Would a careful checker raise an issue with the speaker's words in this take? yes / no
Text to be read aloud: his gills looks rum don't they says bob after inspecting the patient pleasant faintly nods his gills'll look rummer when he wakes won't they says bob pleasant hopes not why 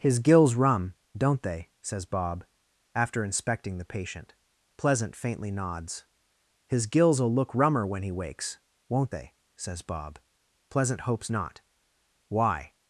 yes